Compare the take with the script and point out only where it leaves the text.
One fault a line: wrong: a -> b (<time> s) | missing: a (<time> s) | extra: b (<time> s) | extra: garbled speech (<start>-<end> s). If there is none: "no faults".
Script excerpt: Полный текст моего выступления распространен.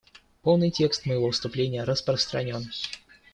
no faults